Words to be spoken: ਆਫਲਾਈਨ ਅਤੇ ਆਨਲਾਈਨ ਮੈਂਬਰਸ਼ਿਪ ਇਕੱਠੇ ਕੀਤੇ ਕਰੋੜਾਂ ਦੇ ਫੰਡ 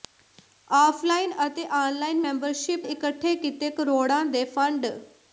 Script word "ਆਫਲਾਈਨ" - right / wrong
right